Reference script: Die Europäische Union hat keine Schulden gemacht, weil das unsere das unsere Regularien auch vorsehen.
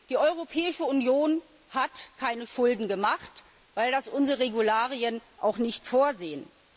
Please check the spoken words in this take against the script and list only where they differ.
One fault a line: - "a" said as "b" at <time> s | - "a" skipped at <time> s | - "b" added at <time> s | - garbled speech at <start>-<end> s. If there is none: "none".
- "das unsere" skipped at 4.4 s
- "nicht" added at 5.6 s